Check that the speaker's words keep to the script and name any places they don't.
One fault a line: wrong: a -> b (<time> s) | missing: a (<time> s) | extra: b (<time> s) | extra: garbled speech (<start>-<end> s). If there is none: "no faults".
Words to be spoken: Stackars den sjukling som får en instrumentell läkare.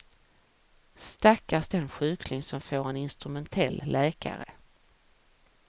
no faults